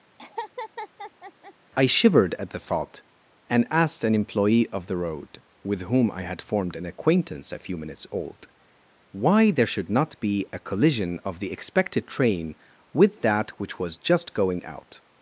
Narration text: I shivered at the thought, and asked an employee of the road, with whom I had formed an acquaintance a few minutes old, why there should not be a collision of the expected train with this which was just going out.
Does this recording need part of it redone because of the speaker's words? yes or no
yes